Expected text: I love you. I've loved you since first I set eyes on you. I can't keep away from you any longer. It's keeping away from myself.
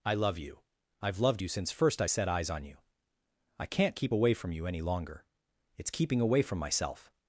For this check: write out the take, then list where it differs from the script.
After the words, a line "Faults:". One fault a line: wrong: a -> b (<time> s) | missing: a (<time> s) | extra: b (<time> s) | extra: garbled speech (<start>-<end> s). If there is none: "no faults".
I love you. I've loved you since first I set eyes on you. I can't keep away from you any longer. It's keeping away from myself.
Faults:
no faults